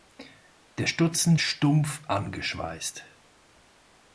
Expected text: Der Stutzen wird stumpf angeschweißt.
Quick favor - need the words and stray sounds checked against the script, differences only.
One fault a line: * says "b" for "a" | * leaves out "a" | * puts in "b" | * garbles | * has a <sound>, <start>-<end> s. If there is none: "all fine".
* leaves out "wird"